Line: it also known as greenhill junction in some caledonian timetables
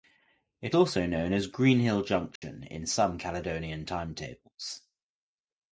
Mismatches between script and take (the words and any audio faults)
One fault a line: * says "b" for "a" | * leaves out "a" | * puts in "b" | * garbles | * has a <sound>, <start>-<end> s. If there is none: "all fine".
* has a dropout, 2.4-2.4 s